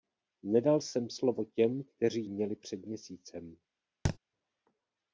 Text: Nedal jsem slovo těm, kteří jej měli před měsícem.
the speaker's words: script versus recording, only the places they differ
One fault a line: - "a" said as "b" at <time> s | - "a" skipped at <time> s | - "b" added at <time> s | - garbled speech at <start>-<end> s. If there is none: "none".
- "jej" skipped at 2.3 s